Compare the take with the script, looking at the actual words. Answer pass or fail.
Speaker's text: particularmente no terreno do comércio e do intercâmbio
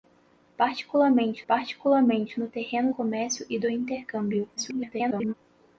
fail